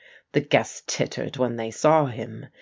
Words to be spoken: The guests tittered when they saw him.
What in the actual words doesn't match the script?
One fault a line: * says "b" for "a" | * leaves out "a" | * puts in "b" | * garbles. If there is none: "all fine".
all fine